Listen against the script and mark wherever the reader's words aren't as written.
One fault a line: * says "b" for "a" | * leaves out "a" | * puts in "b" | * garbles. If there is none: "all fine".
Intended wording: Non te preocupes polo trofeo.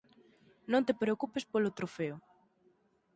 all fine